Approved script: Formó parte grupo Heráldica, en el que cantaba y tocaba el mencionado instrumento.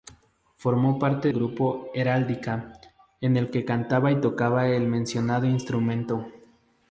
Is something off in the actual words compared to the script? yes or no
no